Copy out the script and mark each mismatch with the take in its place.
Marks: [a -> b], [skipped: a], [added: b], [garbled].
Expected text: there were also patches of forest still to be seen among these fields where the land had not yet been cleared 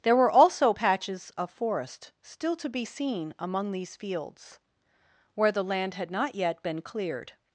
there were also patches of forest still to be seen among these fields where the land had not yet been cleared